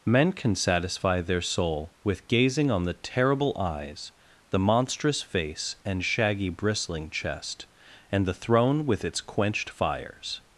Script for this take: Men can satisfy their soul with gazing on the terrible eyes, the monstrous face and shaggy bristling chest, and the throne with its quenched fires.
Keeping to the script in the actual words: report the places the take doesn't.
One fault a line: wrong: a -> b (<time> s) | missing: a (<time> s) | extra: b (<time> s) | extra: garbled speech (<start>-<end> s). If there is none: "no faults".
no faults